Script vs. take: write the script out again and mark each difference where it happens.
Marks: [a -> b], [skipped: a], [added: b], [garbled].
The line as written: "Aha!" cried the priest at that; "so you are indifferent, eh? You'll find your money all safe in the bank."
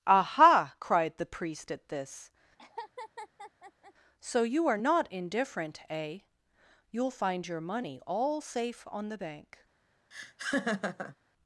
"Aha!" cried the priest at [that; -> this] "so you are [added: not] indifferent, eh? You'll find your money all safe [in -> on] the bank."